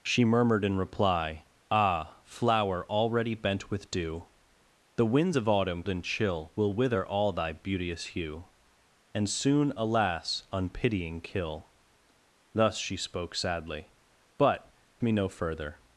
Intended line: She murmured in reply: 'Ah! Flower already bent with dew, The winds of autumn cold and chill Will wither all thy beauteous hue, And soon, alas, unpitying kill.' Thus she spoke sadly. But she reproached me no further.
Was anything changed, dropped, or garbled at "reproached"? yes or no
yes